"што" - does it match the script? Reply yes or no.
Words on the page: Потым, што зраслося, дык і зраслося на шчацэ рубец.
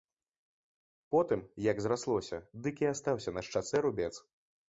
no